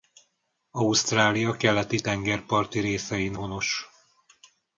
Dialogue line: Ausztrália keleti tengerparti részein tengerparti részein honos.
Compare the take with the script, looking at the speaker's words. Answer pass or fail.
fail